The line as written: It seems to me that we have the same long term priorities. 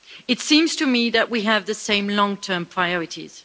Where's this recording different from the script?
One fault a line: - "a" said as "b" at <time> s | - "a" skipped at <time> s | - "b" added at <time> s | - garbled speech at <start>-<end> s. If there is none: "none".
none